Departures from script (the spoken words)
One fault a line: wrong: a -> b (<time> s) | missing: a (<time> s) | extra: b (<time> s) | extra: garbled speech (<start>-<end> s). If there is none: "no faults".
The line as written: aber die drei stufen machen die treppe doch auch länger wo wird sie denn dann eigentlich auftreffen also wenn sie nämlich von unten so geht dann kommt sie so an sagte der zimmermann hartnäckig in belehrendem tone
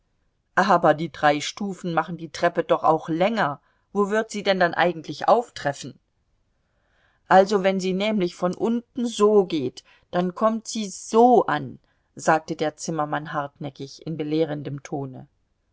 no faults